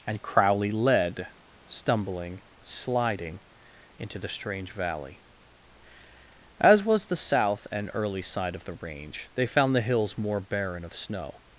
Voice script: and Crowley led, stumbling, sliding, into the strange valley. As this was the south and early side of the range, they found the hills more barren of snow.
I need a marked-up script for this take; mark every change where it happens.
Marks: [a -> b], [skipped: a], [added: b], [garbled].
and Crowley led, stumbling, sliding, into the strange valley. As [skipped: this] was the south and early side of the range, they found the hills more barren of snow.